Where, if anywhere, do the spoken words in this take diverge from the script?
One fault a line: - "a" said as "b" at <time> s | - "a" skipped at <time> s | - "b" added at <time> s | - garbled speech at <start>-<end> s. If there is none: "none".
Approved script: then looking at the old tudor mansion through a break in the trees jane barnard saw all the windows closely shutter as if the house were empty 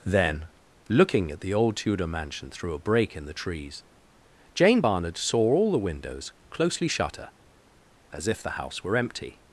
none